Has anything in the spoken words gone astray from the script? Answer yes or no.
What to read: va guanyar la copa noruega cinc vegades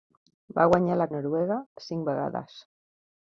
yes